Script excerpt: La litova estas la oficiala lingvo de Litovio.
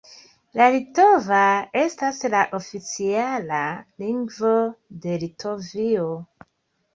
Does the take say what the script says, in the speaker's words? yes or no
yes